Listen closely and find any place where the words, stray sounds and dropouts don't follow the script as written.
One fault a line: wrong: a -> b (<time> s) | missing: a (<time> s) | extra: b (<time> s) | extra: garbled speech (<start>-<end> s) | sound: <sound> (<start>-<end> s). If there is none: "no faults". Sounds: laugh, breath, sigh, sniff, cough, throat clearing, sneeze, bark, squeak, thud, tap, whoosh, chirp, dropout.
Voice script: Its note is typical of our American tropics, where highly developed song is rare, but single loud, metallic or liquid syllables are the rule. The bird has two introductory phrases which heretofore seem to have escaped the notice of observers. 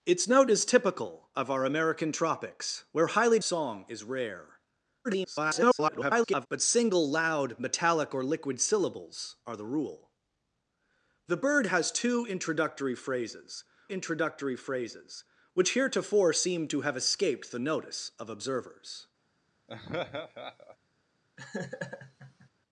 missing: developed (3.4 s)
extra: garbled speech (5.0-6.5 s)
extra: introductory phrases (13.9 s)
sound: laugh (19.7-20.8 s)
sound: laugh (21.4-22.5 s)